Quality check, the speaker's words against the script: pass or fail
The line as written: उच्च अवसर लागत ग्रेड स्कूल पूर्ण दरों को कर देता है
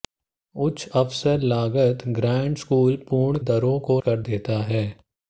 pass